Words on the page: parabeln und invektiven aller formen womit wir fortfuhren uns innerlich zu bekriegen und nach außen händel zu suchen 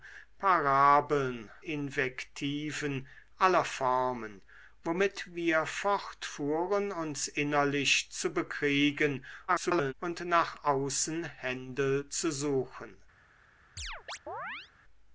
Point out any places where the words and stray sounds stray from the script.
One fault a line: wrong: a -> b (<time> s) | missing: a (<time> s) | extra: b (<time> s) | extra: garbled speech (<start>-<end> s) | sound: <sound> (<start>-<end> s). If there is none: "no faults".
missing: und (1.5 s)
extra: garbled speech (9.5-9.9 s)
sound: chirp (13.8-14.7 s)